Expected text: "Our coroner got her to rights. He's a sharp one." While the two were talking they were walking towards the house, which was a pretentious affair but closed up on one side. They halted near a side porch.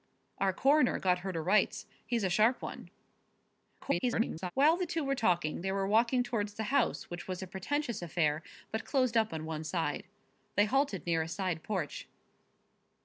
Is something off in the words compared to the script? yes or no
yes